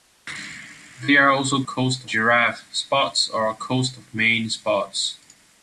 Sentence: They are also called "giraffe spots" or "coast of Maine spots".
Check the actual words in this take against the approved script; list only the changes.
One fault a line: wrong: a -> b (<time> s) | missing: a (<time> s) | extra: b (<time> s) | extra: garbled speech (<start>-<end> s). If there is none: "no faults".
wrong: called -> coast (1.6 s)